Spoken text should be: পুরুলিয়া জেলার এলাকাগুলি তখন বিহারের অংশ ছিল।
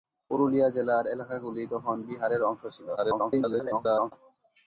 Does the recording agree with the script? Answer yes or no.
no